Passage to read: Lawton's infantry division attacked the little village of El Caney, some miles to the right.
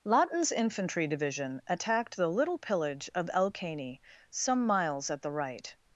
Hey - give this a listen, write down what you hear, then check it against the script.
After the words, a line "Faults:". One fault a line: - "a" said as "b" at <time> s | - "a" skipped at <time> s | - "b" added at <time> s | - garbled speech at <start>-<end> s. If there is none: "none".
Lawton's infantry division attacked the little pillage of El Caney, some miles at the right.
Faults:
- "village" said as "pillage" at 2.6 s
- "to" said as "at" at 5.1 s